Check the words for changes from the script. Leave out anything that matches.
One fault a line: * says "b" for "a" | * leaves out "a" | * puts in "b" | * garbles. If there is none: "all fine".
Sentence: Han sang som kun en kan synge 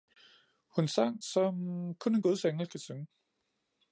* says "Hun" for "Han"
* puts in "guds engel"